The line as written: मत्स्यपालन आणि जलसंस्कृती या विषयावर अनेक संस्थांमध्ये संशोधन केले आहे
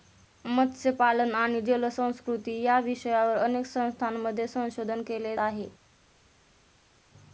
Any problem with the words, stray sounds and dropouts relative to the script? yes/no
no